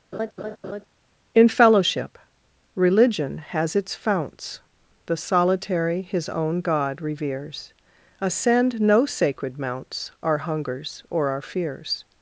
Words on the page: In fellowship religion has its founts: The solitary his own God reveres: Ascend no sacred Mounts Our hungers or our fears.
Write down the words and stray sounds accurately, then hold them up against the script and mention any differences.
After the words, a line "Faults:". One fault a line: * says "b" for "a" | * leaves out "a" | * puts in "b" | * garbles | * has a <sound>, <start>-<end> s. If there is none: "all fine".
In fellowship religion has its founts: The solitary his own God reveres: Ascend no sacred Mounts Our hungers or our fears.
Faults:
* has a laugh, 0.1-0.9 s